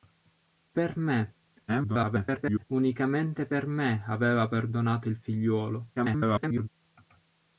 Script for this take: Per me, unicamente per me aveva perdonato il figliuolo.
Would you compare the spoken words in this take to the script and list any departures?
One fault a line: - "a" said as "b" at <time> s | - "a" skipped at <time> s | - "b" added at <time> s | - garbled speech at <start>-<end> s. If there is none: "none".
- garbled speech at 1.7-2.6 s
- garbled speech at 6.0-6.7 s